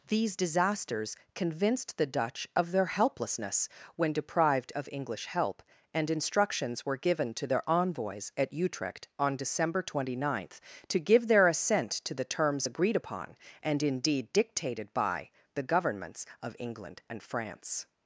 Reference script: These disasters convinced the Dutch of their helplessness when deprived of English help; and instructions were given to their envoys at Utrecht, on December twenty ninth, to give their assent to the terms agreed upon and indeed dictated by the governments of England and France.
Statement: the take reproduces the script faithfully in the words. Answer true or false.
true